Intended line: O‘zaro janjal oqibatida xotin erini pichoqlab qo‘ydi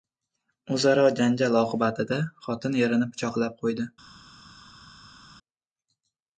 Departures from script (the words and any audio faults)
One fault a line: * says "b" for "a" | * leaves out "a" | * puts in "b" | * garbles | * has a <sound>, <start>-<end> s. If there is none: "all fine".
all fine